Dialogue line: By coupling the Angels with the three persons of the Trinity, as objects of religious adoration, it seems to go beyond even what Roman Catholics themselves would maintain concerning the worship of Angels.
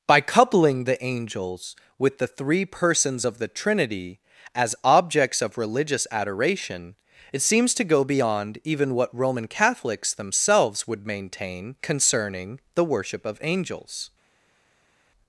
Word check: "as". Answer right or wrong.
right